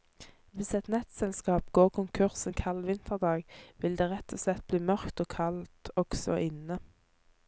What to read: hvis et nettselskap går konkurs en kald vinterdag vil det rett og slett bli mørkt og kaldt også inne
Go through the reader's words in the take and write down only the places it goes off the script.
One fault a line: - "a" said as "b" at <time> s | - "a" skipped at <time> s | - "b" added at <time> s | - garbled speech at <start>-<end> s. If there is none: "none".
none